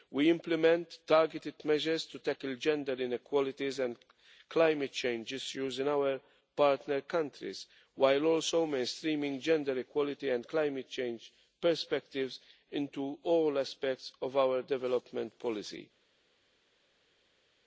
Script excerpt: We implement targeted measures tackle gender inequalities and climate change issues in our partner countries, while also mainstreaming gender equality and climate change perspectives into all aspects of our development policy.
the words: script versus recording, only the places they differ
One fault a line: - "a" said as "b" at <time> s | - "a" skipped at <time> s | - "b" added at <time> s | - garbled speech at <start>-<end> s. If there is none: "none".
- "to" added at 2.1 s